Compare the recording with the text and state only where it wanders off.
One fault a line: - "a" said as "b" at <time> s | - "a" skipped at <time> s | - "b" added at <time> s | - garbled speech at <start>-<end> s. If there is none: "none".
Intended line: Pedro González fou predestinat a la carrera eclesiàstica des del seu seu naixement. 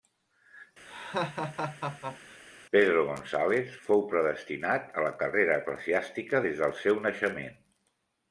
- "seu" skipped at 7.0 s